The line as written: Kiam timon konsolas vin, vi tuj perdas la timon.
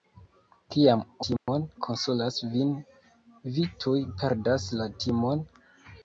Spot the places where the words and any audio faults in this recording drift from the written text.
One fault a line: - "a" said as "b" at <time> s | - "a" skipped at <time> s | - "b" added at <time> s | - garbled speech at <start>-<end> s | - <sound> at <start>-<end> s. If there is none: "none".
- dropout at 1.4-1.5 s